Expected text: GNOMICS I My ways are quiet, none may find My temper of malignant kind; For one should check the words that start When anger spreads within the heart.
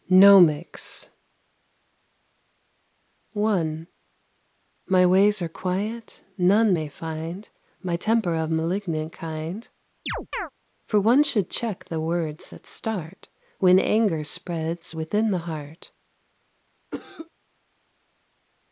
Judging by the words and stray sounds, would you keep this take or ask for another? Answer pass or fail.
fail